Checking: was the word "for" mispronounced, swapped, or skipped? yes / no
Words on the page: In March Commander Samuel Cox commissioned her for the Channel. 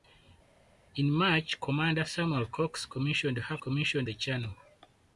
yes